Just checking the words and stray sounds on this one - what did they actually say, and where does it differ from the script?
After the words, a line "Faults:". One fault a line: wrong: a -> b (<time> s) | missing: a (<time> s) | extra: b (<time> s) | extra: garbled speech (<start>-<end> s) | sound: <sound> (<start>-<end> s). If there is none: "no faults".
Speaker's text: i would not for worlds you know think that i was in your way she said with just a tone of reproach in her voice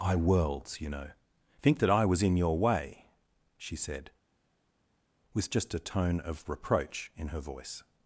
i worlds you know think that i was in your way she said with just a tone of reproach in her voice
Faults:
missing: would not for (0.1 s)